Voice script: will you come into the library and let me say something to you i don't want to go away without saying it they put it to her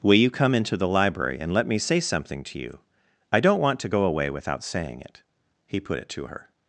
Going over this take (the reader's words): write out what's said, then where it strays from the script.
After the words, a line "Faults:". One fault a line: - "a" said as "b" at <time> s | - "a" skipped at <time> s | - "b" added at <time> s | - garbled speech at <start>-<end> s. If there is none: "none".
will you come into the library and let me say something to you i don't want to go away without saying it he put it to her
Faults:
- "they" said as "he" at 5.7 s